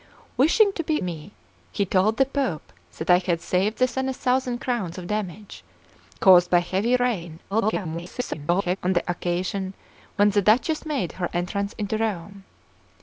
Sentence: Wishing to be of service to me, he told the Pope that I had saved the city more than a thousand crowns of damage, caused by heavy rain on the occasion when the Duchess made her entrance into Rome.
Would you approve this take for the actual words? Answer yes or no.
no